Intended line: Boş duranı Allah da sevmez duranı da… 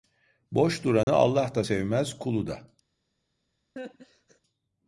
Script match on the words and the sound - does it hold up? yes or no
no